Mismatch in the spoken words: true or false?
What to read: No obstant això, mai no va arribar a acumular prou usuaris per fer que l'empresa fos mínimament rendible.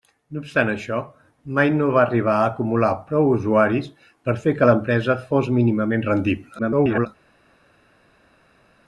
true